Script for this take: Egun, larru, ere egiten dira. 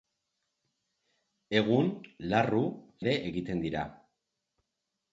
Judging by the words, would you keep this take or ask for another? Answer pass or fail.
pass